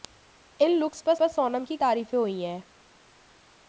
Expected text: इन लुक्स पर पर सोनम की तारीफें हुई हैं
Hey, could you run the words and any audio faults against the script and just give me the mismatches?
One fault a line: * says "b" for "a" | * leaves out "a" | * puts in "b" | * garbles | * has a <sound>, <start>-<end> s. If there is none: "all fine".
all fine